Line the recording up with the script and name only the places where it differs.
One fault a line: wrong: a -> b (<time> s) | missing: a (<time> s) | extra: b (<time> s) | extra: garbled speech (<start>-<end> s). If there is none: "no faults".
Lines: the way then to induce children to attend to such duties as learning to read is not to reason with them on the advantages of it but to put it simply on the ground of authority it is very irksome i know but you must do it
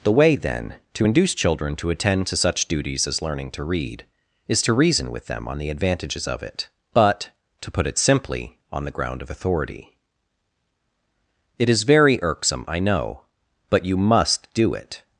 missing: not (4.6 s)